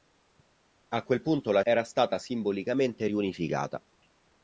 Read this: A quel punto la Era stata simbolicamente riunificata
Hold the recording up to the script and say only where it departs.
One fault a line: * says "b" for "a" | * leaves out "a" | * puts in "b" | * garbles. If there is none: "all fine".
all fine